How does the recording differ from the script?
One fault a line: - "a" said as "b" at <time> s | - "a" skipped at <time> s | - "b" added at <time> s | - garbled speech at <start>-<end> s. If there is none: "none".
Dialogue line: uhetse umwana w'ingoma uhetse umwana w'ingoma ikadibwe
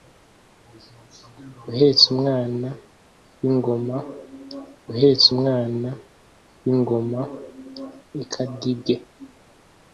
none